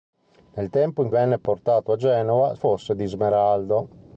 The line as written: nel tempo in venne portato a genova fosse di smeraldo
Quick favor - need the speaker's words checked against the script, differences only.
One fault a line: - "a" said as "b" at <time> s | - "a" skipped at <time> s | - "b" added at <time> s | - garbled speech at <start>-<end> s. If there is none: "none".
none